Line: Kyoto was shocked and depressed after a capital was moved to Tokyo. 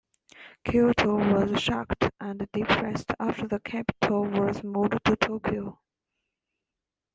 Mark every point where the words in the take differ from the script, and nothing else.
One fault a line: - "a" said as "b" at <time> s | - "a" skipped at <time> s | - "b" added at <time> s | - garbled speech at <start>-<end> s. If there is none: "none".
- "a" said as "the" at 3.5 s